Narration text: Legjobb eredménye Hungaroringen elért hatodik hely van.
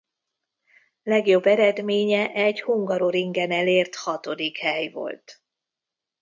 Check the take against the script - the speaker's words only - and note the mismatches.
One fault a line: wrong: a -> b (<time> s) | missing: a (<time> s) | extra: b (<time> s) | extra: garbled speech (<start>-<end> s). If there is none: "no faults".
extra: egy (2.3 s)
wrong: van -> volt (4.9 s)